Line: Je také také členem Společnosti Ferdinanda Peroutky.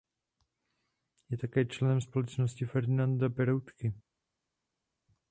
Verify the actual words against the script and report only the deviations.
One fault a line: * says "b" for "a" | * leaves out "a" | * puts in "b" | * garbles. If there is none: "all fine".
* leaves out "také"